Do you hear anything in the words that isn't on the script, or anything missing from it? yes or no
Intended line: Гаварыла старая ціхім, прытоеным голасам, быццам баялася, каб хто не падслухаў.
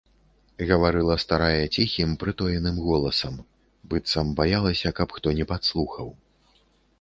no